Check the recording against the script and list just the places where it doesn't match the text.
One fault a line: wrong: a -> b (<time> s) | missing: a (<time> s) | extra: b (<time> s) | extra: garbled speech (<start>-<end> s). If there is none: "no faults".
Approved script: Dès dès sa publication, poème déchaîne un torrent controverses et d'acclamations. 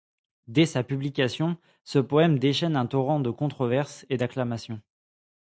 missing: dès (0.7 s)
extra: ce (1.8 s)
extra: de (3.2 s)